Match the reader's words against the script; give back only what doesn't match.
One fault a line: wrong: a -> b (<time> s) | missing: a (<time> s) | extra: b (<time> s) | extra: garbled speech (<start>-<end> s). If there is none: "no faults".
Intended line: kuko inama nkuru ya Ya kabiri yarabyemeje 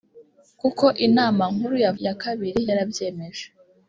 no faults